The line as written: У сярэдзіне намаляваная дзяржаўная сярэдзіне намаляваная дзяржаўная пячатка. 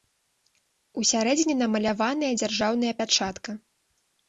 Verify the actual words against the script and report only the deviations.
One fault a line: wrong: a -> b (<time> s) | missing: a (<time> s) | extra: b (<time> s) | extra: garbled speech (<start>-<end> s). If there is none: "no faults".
missing: сярэдзіне намаляваная дзяржаўная (2.9 s)